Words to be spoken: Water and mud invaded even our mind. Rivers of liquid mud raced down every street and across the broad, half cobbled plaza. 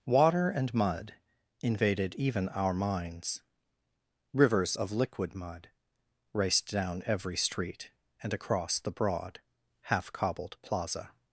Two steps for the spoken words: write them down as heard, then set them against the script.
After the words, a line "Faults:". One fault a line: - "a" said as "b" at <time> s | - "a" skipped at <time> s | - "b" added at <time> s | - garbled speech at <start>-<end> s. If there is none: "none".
Water and mud invaded even our minds. Rivers of liquid mud raced down every street and across the broad, half cobbled plaza.
Faults:
- "mind" said as "minds" at 2.7 s